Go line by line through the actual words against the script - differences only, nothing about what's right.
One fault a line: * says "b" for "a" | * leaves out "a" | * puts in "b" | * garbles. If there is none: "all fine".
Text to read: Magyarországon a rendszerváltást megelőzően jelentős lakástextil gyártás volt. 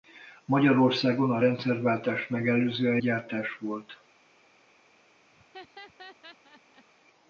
* leaves out "jelentős lakástextil"